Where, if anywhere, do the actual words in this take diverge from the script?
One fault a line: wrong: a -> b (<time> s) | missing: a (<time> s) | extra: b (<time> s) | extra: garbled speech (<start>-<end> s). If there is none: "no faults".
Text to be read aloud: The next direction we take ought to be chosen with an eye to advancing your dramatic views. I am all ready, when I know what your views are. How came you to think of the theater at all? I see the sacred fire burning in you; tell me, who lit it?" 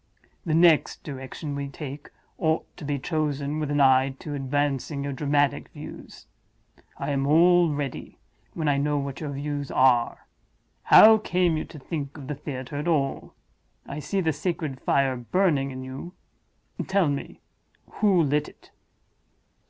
no faults